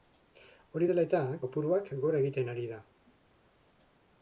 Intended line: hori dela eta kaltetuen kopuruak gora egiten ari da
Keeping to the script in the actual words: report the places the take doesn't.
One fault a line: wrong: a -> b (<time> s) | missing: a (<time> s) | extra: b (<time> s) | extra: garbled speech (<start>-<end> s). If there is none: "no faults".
missing: kaltetuen (1.2 s)